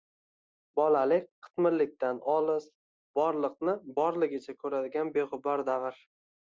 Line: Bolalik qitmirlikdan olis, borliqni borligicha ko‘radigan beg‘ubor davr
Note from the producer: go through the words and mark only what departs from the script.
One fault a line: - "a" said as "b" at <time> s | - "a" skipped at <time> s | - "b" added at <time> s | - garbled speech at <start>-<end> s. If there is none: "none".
none